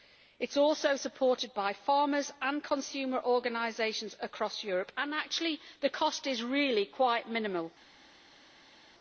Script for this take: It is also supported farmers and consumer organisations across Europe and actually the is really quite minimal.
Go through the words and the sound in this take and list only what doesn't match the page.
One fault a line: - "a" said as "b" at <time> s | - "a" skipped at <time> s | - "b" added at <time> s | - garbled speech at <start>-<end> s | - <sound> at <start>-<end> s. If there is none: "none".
- "by" added at 1.5 s
- "cost" added at 5.9 s